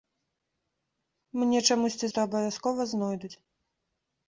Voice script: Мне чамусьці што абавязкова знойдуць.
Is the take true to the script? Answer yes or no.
yes